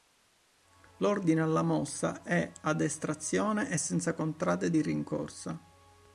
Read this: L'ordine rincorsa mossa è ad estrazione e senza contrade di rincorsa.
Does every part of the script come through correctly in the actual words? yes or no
no